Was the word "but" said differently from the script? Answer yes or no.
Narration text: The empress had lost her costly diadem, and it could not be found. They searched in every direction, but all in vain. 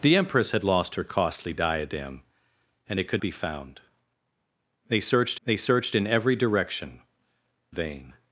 yes